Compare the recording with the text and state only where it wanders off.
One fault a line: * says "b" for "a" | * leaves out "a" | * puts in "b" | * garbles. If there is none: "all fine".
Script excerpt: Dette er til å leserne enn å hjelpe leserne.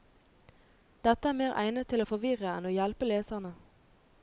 * puts in "mer egnet"
* says "forvirre" for "leserne"